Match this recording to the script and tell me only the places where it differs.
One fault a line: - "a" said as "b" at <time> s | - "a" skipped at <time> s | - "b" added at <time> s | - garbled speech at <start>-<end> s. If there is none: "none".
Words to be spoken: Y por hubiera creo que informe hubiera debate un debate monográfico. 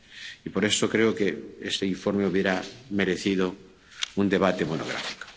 - "hubiera" said as "eso" at 0.7 s
- "este" added at 1.6 s
- "debate" said as "merecido" at 2.9 s